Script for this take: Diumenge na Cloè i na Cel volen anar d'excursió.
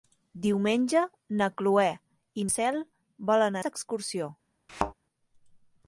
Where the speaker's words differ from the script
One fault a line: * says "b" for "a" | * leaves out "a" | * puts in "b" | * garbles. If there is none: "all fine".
* leaves out "na"
* leaves out "anar"